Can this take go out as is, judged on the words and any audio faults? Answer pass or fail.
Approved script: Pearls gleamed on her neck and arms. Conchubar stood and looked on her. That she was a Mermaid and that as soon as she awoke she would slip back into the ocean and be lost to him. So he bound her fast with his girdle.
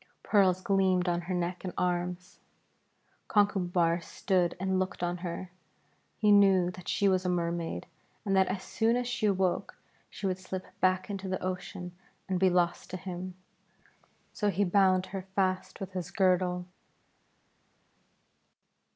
fail